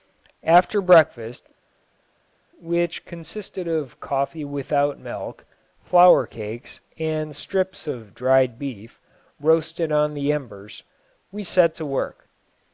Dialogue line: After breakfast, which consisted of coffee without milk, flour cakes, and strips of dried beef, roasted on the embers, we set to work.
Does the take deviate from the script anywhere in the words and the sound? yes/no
no